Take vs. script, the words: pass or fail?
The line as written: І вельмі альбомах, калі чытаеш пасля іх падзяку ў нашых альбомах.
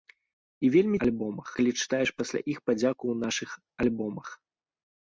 pass